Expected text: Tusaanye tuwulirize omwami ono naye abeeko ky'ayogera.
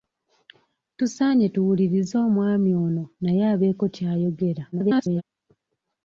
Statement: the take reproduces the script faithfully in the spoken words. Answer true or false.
false